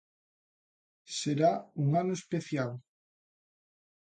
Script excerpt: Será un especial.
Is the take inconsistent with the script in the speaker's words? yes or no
yes